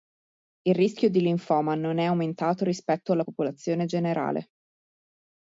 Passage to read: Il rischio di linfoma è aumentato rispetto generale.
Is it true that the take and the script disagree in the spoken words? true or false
true